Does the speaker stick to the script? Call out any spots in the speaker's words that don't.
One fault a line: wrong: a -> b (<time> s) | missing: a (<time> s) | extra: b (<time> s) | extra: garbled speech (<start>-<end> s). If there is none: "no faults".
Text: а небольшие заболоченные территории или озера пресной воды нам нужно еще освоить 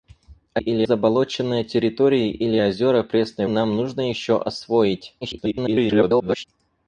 wrong: небольшие -> или (0.6 s)
missing: воды (3.5 s)
extra: garbled speech (5.2-6.4 s)